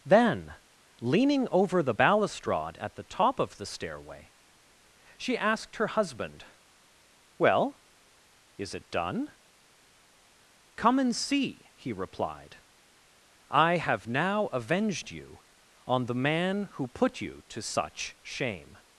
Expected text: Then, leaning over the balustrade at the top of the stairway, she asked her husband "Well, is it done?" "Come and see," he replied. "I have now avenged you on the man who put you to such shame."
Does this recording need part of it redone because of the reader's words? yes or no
no